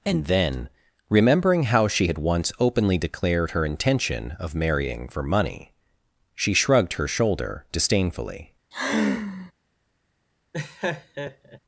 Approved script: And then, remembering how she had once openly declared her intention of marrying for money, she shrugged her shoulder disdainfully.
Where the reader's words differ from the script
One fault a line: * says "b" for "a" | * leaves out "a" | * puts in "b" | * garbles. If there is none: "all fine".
all fine